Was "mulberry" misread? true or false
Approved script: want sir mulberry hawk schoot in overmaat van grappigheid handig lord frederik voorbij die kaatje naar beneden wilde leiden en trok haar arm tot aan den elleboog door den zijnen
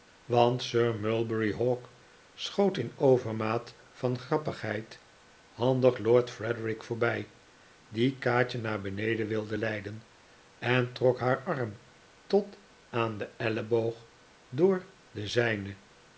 false